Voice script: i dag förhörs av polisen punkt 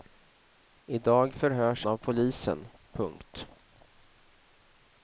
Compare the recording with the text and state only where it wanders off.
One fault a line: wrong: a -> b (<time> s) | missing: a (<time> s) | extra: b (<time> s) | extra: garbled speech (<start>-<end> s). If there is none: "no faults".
no faults